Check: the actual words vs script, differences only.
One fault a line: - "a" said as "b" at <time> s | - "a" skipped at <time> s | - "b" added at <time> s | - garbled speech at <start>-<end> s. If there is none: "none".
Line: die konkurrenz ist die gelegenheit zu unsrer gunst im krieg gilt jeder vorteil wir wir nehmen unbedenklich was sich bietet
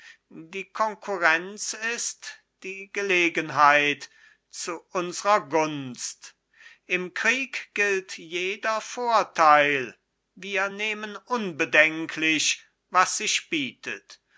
- "wir" skipped at 10.7 s